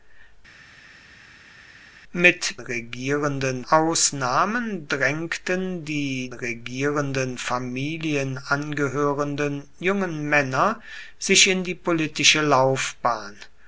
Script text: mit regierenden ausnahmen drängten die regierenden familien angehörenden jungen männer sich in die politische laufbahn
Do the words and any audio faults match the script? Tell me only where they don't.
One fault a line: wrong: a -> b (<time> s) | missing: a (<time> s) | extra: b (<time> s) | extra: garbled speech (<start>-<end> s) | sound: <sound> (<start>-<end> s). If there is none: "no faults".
no faults